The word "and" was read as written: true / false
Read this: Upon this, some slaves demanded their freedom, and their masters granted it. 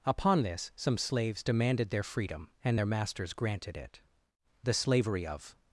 true